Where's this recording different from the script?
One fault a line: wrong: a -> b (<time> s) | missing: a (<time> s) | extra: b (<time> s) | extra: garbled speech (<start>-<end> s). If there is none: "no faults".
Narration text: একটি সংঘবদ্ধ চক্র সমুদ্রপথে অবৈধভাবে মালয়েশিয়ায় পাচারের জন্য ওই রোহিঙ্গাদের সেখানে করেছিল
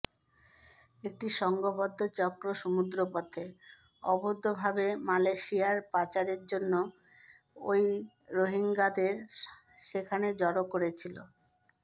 extra: জড়ো (10.4 s)